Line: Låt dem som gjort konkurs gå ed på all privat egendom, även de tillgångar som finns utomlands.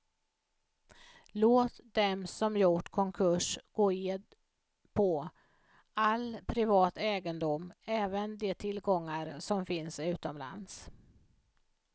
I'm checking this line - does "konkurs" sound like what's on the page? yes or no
yes